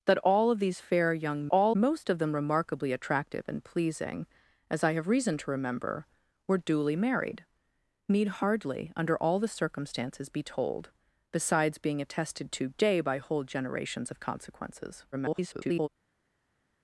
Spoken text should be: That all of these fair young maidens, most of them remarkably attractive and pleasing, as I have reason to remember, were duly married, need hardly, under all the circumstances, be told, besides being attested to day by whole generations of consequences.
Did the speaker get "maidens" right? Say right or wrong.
wrong